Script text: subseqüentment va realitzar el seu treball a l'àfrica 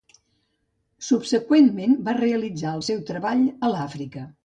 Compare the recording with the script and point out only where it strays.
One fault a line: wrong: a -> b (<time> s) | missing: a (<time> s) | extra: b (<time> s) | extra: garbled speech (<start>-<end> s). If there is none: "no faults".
no faults